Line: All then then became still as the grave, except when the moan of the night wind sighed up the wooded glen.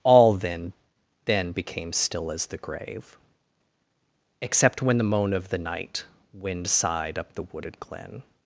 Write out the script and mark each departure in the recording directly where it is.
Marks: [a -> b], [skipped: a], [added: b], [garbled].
All then then became still as the grave, except when the moan of the night wind sighed up the wooded glen.